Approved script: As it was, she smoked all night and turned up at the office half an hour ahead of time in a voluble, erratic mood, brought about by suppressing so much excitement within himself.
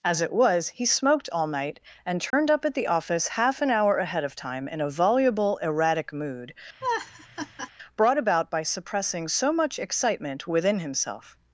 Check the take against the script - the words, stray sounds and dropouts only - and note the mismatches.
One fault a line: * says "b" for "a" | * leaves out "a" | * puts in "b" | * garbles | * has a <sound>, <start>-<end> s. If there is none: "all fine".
* says "he" for "she"
* has a dropout, 2.3-2.3 s
* has a laugh, 6.8-7.7 s